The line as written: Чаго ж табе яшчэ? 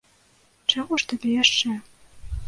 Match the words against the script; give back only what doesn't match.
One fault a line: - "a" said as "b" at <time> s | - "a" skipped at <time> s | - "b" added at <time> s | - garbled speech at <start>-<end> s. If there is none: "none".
none